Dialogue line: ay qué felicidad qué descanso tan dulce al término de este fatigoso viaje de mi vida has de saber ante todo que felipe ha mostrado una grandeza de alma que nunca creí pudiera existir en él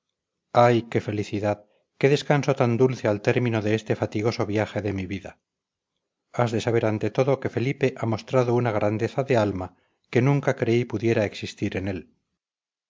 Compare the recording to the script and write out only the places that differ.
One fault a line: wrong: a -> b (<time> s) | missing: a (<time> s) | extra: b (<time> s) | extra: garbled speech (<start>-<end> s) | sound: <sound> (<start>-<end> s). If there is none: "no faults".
no faults